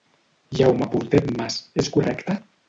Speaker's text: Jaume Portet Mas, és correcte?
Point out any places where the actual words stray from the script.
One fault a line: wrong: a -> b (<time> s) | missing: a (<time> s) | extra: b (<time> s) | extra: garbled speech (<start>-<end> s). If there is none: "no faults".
no faults